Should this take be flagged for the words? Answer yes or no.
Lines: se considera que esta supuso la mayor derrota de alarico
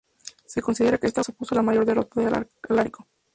no